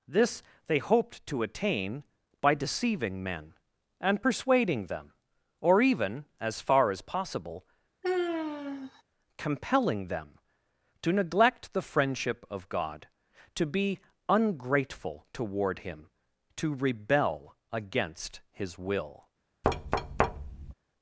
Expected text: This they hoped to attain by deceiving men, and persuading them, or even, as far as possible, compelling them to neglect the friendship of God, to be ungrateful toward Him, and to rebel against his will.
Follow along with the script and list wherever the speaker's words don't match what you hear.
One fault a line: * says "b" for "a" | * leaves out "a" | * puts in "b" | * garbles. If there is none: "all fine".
* leaves out "and"